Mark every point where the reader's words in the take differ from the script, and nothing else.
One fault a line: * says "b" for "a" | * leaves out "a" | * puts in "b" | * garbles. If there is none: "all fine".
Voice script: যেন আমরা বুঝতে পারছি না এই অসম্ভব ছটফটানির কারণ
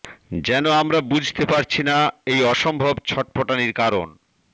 all fine